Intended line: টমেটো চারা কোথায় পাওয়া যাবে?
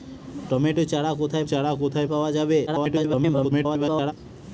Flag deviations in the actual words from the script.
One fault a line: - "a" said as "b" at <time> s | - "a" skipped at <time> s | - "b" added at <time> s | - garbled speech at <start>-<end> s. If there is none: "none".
- "চারা কোথায়" added at 1.4 s
- garbled speech at 2.7-4.1 s